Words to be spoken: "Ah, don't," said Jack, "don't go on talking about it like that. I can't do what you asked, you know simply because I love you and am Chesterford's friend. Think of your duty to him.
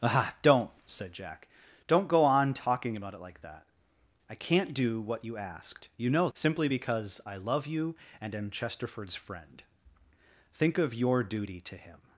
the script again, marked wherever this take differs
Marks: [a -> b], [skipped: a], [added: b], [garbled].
"Ah, don't," said Jack, "don't go on talking about it like that. I can't do what you asked, you know simply because I love you and am Chesterford's friend. Think of your duty to him.